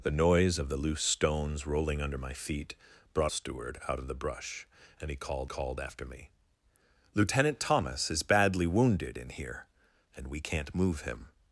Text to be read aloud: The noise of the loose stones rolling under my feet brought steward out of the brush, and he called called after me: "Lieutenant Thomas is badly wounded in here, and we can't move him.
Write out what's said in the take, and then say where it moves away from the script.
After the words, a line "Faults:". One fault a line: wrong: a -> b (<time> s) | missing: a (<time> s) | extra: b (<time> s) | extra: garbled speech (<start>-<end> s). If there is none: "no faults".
The noise of the loose stones rolling under my feet brought steward out of the brush, and he called called after me: "Lieutenant Thomas is badly wounded in here, and we can't move him.
Faults:
no faults